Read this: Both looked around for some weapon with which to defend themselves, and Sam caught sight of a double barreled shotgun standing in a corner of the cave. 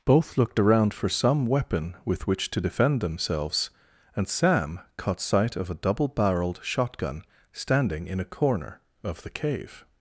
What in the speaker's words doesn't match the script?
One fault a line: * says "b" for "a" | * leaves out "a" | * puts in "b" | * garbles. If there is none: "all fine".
all fine